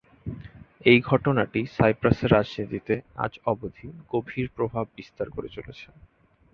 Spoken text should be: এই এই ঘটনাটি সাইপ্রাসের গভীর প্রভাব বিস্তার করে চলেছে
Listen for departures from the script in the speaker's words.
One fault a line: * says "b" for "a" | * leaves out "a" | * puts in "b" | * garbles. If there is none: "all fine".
* leaves out "এই"
* puts in "রাজনীতিতে আজ অবধি"